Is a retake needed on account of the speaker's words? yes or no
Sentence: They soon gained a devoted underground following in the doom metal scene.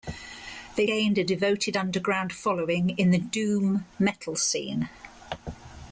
yes